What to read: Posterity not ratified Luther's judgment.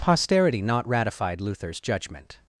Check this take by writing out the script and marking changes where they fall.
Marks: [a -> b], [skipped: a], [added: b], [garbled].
Posterity not ratified Luther's judgment.